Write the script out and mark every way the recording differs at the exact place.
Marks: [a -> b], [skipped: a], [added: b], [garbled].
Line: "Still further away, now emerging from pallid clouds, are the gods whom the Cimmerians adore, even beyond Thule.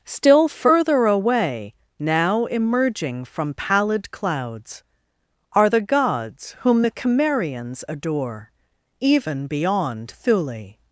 "Still further away, now emerging from pallid clouds, are the gods whom the Cimmerians adore, even beyond Thule.